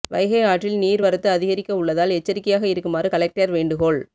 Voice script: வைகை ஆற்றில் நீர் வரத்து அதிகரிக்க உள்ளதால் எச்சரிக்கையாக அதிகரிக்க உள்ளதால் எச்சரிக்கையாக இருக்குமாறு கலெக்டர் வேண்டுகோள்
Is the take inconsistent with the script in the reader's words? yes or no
yes